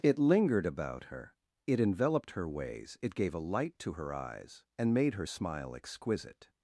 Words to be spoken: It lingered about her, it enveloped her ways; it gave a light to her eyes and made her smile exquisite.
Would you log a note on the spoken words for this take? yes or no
no